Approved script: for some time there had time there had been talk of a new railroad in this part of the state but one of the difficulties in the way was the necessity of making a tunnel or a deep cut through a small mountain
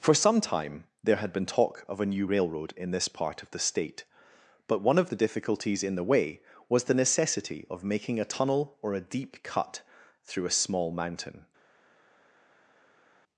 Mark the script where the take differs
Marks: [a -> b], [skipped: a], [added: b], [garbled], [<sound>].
for some time there had [skipped: time there had] been talk of a new railroad in this part of the state but one of the difficulties in the way was the necessity of making a tunnel or a deep cut through a small mountain